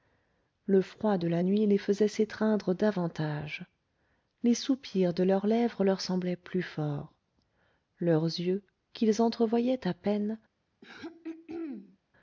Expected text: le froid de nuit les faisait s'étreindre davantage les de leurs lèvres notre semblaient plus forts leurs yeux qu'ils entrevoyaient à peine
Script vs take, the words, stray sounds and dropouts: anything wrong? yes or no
yes